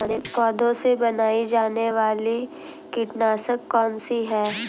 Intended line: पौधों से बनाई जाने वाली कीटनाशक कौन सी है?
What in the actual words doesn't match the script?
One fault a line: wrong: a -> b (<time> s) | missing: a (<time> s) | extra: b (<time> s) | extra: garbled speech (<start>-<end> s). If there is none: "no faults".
no faults